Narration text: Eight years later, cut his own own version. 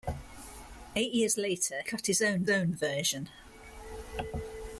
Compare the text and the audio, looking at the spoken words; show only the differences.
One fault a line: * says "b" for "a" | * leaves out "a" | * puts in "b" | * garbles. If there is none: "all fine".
all fine